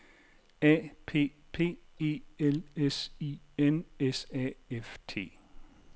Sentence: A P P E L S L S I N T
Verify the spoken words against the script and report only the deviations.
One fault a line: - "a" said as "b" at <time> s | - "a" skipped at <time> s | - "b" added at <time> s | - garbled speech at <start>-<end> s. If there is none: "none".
- "L" said as "I N" at 3.2 s
- "I N" said as "A F" at 4.3 s